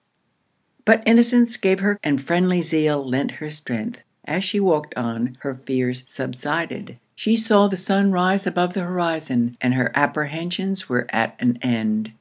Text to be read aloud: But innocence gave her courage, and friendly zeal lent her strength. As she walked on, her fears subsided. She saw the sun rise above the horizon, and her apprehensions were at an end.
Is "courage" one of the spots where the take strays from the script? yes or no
yes